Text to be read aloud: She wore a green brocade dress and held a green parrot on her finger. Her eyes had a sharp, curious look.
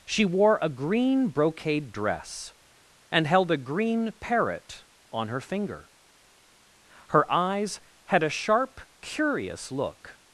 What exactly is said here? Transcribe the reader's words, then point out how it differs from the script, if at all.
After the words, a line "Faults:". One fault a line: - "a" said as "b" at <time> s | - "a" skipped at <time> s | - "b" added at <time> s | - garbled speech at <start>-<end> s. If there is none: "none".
She wore a green brocade dress and held a green parrot on her finger. Her eyes had a sharp, curious look.
Faults:
none